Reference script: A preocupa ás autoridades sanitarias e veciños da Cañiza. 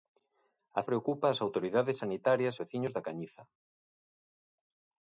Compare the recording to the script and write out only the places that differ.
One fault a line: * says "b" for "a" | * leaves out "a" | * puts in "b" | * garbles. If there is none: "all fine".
all fine